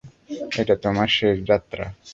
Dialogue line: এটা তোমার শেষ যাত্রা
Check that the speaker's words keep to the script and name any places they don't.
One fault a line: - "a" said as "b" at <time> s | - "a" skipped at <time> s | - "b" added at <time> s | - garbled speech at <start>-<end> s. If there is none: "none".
none